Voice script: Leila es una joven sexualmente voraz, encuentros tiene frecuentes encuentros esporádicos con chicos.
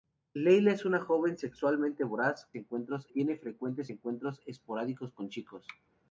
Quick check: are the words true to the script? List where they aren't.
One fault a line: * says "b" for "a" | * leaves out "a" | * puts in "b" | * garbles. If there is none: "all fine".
all fine